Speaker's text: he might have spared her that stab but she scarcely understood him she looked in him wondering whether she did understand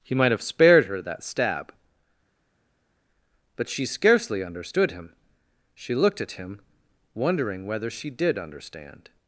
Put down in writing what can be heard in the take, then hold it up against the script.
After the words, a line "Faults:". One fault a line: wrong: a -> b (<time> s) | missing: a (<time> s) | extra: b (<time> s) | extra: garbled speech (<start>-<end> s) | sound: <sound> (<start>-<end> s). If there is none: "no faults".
he might have spared her that stab but she scarcely understood him she looked at him wondering whether she did understand
Faults:
wrong: in -> at (6.2 s)